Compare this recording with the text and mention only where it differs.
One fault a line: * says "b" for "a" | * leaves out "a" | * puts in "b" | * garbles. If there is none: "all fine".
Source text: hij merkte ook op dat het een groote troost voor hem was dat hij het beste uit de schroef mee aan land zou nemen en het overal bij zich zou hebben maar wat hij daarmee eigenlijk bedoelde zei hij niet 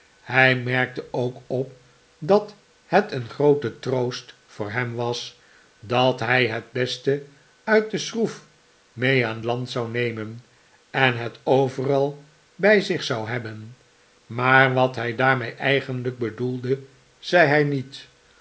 all fine